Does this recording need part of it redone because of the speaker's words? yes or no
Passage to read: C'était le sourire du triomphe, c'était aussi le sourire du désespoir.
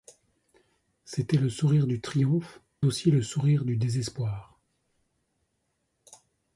yes